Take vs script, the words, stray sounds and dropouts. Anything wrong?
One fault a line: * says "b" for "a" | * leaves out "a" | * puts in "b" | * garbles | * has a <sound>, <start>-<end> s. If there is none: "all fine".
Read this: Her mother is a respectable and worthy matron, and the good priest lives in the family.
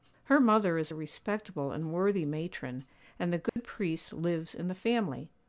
* has a dropout, 3.5-3.6 s